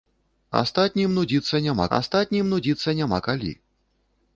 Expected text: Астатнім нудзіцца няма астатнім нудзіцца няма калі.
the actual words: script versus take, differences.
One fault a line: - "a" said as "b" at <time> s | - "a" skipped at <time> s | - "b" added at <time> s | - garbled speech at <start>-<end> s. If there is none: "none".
none